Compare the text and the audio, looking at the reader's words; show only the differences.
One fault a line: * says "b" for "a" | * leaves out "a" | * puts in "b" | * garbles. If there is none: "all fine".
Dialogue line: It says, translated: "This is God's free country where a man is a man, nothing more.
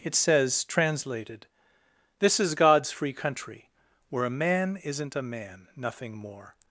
* says "isn't" for "is"